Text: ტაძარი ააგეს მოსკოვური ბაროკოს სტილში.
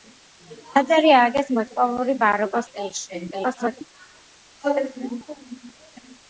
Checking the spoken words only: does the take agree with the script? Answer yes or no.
no